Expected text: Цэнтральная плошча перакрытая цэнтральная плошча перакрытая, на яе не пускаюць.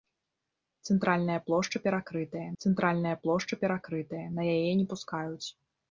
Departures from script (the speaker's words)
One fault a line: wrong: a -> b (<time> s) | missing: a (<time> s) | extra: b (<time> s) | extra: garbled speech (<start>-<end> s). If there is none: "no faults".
no faults